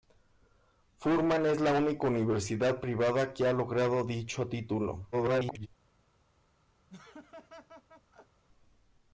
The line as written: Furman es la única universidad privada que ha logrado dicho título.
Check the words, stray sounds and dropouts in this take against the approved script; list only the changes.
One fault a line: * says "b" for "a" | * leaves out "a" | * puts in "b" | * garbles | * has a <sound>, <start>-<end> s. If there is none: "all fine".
* garbles
* has a laugh, 6.9-8.4 s